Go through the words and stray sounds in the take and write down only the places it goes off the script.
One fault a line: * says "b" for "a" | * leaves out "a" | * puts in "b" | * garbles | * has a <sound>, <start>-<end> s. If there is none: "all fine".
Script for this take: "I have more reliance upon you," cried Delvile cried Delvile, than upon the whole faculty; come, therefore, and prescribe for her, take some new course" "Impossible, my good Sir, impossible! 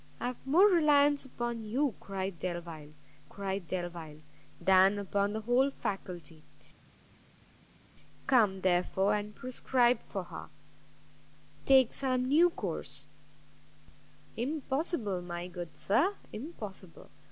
all fine